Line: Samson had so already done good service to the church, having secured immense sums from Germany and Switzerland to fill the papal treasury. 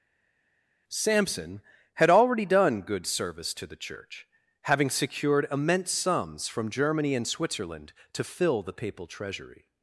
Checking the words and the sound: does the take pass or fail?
fail